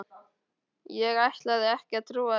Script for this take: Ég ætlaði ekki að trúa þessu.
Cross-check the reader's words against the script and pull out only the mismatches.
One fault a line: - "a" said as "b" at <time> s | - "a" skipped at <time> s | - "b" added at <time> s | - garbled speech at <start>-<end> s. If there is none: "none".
none